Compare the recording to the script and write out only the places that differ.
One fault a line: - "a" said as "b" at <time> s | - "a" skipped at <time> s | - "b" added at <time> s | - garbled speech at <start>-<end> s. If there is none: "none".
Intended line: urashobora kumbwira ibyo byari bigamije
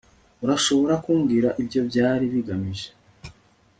none